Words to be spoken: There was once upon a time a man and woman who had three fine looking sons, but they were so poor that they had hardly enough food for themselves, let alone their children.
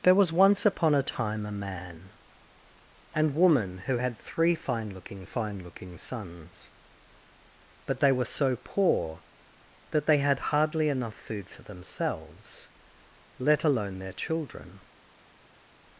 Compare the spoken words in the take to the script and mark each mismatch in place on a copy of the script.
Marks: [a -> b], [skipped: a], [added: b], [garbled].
There was once upon a time a man and woman who had three fine looking [added: fine looking] sons, but they were so poor that they had hardly enough food for themselves, let alone their children.